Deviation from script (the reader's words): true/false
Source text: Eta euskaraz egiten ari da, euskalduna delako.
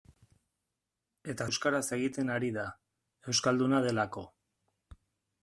false